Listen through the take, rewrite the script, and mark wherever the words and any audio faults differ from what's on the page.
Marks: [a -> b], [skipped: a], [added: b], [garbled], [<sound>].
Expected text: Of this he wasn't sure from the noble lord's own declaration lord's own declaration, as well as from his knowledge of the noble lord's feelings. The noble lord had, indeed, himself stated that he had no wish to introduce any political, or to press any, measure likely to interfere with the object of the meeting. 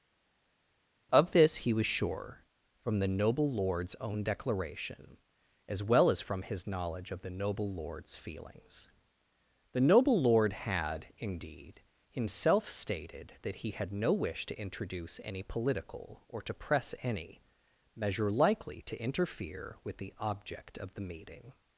Of this he [wasn't -> was] sure from the noble lord's own declaration [skipped: lord's own declaration,] as well as from his knowledge of the noble lord's feelings. The noble lord had, indeed, himself stated that he had no wish to introduce any political, or to press any, measure likely to interfere with the object of the meeting.